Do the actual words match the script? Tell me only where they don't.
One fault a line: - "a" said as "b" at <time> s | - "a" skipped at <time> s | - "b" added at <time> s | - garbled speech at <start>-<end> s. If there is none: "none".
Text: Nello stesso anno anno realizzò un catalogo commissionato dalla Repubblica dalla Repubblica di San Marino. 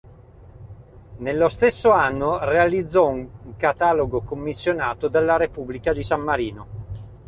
- "anno" skipped at 2.4 s
- "dalla Repubblica" skipped at 5.9 s